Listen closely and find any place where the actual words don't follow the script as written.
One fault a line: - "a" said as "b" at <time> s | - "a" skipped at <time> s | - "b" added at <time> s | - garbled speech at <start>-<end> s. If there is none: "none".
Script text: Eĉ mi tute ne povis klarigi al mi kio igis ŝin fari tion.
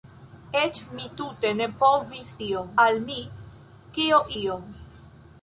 - "klarigi" said as "tion" at 2.4 s
- "igis ŝin fari" skipped at 4.2 s